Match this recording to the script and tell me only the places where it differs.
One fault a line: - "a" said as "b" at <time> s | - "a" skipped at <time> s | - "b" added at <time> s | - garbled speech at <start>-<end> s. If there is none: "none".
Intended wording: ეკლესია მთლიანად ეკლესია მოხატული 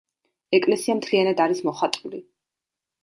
- "ეკლესია" said as "არის" at 1.5 s